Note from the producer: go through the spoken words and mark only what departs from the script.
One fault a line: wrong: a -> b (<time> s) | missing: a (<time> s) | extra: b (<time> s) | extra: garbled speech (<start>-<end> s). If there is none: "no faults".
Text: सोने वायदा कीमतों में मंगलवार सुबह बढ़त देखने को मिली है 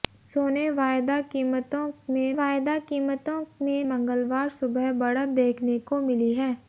extra: वायदा कीमतों में (2.3 s)